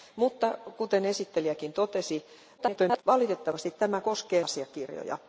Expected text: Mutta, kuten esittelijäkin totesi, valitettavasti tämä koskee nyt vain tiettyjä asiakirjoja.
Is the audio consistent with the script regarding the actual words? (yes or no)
no